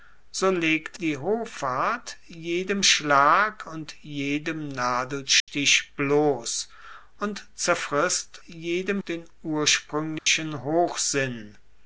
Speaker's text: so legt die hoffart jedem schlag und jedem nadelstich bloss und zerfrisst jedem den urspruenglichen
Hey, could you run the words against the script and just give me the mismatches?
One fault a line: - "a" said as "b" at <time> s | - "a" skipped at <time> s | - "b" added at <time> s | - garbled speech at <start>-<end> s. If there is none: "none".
none